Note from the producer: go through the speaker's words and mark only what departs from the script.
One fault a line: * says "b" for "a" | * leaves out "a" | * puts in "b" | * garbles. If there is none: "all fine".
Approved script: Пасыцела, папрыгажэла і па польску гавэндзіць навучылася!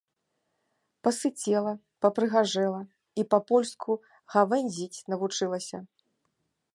all fine